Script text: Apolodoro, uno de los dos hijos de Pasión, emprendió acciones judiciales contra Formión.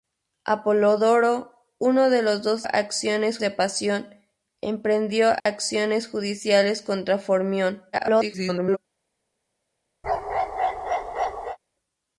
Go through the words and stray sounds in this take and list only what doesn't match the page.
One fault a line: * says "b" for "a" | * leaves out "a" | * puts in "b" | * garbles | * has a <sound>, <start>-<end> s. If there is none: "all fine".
* says "acciones" for "hijos"
* has a dropout, 5.4-5.5 s
* garbles
* has a bark, 10.0-11.6 s